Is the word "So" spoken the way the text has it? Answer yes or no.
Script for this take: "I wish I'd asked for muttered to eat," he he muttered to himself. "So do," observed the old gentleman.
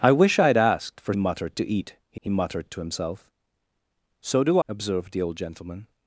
yes